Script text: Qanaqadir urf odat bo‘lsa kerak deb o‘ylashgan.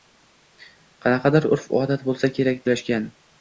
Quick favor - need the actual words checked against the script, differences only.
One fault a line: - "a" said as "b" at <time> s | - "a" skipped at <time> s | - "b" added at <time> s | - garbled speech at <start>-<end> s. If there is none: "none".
- "deb" skipped at 2.7 s